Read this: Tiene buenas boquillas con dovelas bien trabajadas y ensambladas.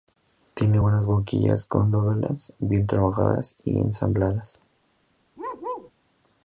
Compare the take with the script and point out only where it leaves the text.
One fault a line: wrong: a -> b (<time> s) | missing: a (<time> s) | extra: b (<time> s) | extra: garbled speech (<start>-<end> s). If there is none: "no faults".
no faults